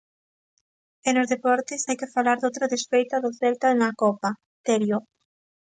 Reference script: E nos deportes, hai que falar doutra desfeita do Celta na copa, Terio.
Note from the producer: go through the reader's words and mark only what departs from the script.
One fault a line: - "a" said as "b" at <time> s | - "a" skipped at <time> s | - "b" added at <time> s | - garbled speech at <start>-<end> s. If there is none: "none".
none